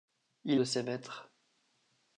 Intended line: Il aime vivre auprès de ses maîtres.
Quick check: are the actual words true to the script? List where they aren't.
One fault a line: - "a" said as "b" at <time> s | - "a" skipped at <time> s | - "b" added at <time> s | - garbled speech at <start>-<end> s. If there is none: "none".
- "aime vivre auprès" skipped at 0.6 s